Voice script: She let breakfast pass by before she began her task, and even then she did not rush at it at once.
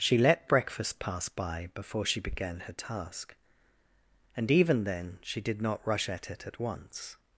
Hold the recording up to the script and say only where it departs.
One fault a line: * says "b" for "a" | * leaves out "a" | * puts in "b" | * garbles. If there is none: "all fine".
all fine